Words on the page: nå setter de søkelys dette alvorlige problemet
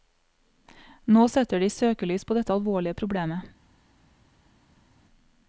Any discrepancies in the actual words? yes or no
yes